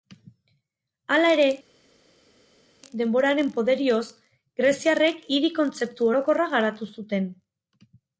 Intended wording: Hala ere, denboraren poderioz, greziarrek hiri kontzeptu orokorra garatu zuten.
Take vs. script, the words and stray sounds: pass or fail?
pass